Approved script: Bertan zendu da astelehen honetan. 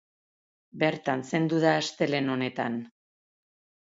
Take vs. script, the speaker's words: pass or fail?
pass